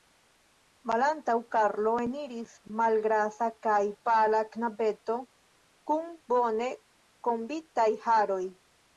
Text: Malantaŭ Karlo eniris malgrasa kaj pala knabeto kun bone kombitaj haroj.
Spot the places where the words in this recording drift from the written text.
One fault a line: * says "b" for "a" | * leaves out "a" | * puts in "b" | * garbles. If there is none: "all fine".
all fine